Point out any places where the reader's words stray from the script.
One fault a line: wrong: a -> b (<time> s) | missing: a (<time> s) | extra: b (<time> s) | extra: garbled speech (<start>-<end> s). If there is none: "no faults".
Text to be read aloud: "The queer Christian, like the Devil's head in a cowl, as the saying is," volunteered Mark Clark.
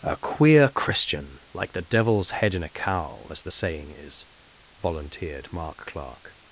wrong: The -> A (0.0 s)